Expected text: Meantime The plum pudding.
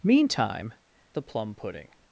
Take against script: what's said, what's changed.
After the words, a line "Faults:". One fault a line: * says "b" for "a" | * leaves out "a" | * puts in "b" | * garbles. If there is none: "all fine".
Meantime The plum pudding.
Faults:
all fine